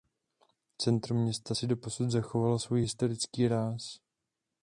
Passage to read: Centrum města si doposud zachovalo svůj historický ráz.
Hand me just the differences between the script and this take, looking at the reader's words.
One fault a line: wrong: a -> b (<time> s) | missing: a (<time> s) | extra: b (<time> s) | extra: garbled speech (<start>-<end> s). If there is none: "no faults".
no faults